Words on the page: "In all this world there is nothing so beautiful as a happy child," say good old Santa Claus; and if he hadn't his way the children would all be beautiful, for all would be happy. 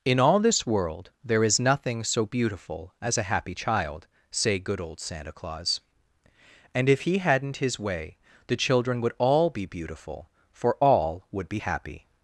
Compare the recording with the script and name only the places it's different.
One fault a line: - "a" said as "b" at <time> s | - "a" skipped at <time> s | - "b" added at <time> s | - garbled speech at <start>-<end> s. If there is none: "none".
none